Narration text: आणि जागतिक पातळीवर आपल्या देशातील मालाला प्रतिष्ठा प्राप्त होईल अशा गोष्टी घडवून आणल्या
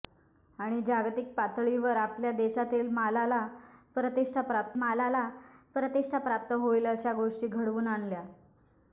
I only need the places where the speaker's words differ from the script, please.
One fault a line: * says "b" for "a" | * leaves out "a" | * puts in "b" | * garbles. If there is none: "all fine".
* puts in "मालाला प्रतिष्ठा प्राप्त"